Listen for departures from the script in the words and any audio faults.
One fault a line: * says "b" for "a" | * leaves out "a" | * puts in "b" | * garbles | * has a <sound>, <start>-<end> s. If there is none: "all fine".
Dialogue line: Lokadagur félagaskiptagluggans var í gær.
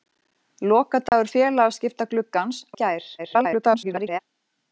* has a dropout, 1.1-1.1 s
* leaves out "var"
* garbles